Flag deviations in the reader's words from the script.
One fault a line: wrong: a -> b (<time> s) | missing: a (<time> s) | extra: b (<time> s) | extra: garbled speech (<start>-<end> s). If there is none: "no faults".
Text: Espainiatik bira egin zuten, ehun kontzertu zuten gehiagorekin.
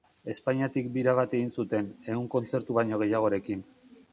extra: bat (1.2 s)
wrong: zuten -> baino (2.8 s)